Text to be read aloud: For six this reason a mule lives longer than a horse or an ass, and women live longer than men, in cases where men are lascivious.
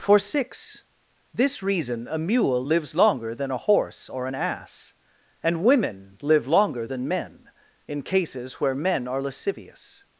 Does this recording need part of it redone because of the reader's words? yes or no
no